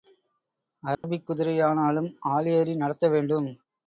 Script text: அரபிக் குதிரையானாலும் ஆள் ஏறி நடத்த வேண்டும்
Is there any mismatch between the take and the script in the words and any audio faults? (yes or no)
yes